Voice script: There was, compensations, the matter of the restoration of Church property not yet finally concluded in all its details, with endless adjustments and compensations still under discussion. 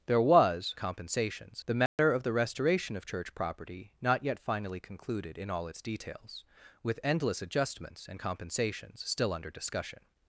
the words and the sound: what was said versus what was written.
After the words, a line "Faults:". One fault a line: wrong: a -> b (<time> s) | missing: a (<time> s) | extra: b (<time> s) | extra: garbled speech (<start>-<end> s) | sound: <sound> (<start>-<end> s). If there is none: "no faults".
There was, compensations, the matter of the restoration of Church property not yet finally concluded in all its details, with endless adjustments and compensations still under discussion.
Faults:
sound: dropout (1.9-2.0 s)